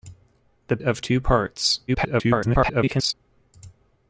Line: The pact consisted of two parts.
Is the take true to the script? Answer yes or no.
no